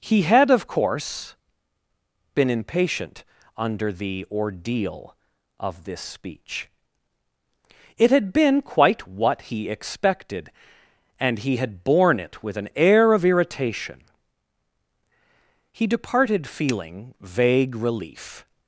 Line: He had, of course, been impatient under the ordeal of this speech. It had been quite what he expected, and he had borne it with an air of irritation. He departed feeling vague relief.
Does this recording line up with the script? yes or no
yes